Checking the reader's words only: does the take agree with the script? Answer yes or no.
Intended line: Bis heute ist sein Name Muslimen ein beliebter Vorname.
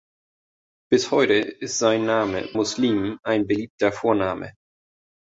yes